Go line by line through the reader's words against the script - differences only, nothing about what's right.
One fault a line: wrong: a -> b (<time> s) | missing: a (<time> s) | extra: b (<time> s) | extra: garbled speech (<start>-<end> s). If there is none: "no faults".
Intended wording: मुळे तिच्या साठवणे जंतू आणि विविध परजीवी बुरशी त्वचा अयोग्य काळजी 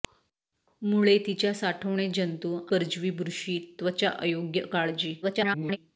missing: आणि विविध (2.5 s)
extra: garbled speech (5.2-5.8 s)